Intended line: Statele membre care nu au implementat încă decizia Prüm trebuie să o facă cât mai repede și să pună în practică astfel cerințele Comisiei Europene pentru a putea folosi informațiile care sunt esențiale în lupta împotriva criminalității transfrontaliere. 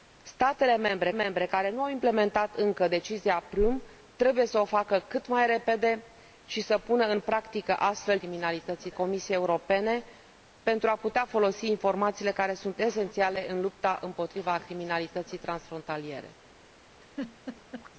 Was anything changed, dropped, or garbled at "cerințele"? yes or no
yes